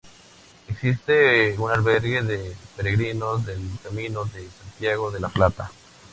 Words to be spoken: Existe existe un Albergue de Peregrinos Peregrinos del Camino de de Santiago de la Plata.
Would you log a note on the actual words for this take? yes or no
yes